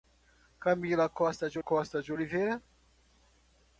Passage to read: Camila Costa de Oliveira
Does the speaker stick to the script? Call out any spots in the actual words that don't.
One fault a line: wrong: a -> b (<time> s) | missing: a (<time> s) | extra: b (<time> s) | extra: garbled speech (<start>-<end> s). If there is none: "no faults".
extra: Costa de (1.6 s)